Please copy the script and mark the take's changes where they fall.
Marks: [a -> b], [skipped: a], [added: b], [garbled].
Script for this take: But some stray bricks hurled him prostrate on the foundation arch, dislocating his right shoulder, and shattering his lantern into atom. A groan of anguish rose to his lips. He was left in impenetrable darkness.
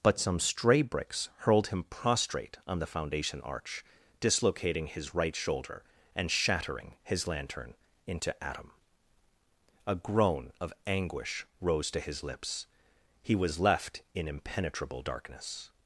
But some stray bricks hurled him prostrate on the foundation arch, dislocating his right shoulder, and shattering his lantern into atom. A groan of anguish rose to his lips. He was left in impenetrable darkness.